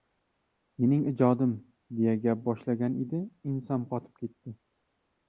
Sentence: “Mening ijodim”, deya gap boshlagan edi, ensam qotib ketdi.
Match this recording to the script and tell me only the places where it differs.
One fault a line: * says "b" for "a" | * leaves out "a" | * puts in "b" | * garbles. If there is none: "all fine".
all fine